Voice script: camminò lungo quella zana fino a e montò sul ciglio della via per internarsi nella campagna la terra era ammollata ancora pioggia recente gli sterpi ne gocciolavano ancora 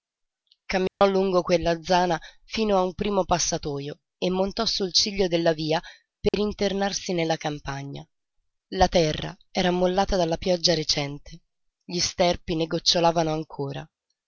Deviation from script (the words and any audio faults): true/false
true